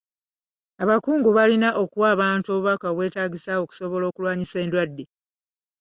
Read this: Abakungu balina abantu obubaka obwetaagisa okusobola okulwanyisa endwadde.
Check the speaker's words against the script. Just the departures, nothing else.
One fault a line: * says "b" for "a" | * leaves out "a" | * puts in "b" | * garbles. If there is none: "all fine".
* puts in "okuwa"